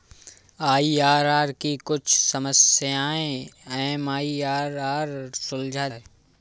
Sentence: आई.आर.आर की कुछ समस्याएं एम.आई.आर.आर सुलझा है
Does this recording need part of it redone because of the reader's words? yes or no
no